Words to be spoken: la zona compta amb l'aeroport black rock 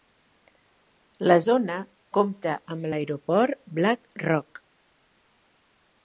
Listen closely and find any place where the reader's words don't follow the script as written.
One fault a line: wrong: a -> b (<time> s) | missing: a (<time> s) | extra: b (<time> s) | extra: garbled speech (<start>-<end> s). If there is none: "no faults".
no faults